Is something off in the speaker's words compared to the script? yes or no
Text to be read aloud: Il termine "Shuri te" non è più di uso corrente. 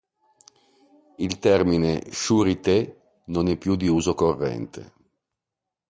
no